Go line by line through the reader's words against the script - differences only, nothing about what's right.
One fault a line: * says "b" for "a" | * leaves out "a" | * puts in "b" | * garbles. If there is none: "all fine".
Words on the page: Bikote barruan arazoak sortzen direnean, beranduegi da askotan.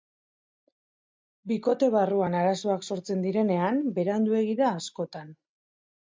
all fine